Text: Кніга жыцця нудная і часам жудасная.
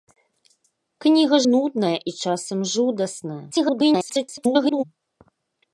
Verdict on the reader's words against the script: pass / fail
fail